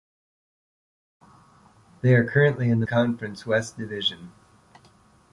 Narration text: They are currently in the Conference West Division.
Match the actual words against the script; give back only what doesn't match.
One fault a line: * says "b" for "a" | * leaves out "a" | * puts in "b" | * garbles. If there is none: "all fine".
all fine